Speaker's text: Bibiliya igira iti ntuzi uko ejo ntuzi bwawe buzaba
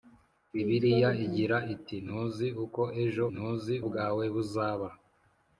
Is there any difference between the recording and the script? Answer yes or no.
no